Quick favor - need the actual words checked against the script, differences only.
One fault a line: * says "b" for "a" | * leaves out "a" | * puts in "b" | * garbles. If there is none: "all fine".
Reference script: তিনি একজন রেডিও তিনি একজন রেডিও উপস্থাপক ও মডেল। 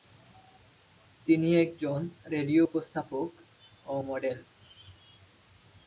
* leaves out "তিনি একজন রেডিও"